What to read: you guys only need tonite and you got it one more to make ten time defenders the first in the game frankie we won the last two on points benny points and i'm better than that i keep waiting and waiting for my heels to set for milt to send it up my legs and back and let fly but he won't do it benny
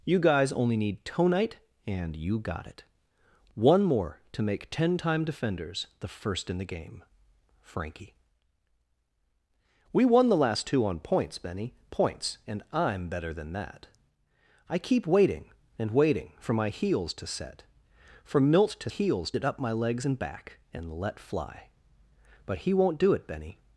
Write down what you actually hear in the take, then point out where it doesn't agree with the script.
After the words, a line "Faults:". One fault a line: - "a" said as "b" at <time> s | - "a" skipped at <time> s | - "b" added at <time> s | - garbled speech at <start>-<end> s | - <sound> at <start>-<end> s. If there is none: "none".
you guys only need tonite and you got it one more to make ten time defenders the first in the game frankie we won the last two on points benny points and i'm better than that i keep waiting and waiting for my heels to set for milt to heels it up my legs and back and let fly but he won't do it benny
Faults:
- "send" said as "heels" at 18.9 s